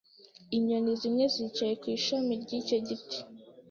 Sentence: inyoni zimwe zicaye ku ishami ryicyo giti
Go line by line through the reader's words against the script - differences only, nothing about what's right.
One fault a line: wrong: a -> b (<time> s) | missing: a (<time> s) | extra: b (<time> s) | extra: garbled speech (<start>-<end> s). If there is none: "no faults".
no faults